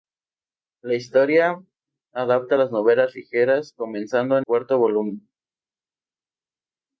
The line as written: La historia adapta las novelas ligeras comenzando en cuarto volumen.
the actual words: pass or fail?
pass